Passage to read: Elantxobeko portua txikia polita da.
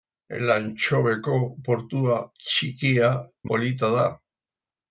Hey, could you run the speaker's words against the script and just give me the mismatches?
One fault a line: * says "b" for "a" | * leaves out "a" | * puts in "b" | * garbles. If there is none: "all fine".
all fine